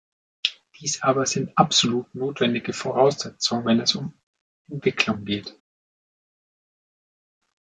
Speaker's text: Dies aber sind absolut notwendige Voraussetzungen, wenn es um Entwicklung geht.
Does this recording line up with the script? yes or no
yes